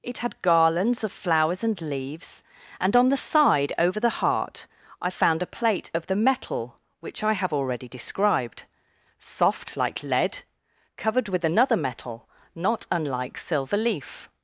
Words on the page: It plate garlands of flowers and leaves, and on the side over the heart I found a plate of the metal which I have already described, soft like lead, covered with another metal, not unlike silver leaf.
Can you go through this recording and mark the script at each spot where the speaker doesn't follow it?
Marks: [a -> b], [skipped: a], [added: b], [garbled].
It [plate -> had] garlands of flowers and leaves, and on the side over the heart I found a plate of the metal which I have already described, soft like lead, covered with another metal, not unlike silver leaf.